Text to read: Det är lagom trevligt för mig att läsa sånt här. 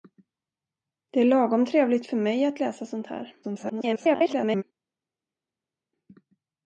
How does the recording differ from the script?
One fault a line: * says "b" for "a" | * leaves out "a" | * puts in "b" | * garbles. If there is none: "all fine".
* garbles